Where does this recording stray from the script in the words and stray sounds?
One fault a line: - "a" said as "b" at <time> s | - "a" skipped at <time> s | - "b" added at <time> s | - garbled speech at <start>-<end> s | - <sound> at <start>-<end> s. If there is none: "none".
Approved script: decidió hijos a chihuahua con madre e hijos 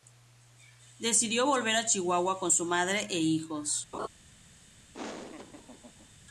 - "hijos" said as "volver" at 1.4 s
- "su" added at 2.5 s
- laugh at 3.9-4.1 s
- laugh at 4.9-6.1 s